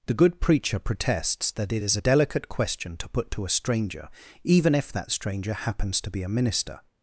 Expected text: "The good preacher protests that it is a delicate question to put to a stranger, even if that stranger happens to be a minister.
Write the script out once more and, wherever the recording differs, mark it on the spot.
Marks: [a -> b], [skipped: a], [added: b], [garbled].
"The good preacher protests that it is a delicate question to put to a stranger, even if that stranger happens to be a minister.